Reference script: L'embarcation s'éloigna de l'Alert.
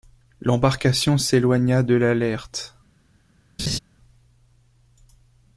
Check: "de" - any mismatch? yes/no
no